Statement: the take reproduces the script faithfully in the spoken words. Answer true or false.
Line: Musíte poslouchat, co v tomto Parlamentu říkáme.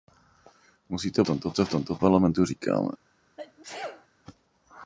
false